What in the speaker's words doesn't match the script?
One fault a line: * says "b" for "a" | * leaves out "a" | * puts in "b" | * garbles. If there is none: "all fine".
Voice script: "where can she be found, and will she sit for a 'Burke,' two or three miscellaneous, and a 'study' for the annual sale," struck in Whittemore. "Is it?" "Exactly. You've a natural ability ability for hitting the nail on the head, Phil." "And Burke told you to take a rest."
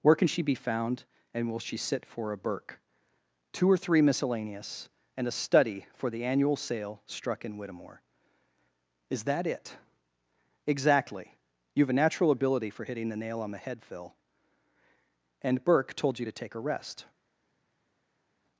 * puts in "that"
* leaves out "ability"